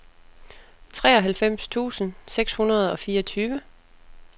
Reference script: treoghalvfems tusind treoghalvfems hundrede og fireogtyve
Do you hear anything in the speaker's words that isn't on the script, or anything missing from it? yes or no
yes